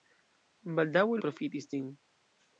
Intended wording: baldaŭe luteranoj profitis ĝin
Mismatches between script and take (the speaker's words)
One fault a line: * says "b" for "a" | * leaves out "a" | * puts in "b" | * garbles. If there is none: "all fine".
* leaves out "luteranoj"